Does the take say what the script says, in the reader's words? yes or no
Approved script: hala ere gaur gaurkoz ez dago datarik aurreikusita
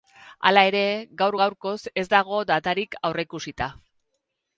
yes